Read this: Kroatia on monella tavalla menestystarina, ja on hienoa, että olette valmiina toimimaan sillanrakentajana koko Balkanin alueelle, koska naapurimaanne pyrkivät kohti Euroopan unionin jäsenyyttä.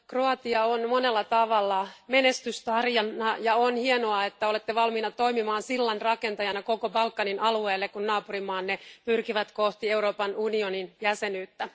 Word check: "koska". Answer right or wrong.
wrong